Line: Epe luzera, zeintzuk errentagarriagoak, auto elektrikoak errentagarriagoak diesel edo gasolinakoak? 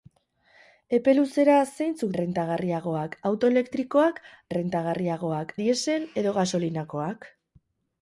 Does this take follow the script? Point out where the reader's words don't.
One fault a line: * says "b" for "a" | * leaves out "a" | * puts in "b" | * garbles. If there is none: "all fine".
all fine